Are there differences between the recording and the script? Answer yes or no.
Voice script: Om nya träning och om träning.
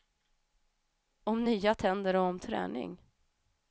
yes